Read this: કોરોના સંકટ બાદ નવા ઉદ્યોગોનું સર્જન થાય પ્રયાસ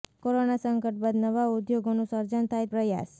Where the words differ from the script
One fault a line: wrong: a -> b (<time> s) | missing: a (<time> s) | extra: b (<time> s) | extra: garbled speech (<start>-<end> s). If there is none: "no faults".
no faults